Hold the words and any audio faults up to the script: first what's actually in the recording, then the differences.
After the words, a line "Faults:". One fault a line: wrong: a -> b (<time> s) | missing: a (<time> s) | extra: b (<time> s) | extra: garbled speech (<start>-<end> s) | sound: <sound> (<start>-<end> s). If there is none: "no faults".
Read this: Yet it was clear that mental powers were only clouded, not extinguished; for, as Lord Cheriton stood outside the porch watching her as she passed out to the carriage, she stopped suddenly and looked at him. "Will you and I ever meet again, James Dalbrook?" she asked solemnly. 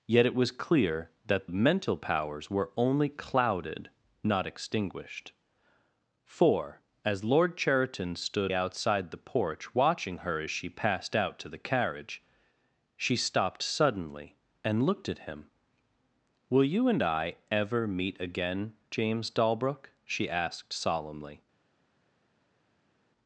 Yet it was clear that mental powers were only clouded, not extinguished; for, as Lord Cheriton stood outside the porch watching her as she passed out to the carriage, she stopped suddenly and looked at him. "Will you and I ever meet again, James Dalbrook?" she asked solemnly.
Faults:
no faults